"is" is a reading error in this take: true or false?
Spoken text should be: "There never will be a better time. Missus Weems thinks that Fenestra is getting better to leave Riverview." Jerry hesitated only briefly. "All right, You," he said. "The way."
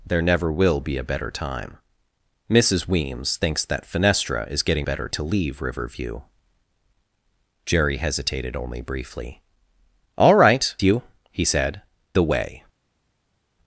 false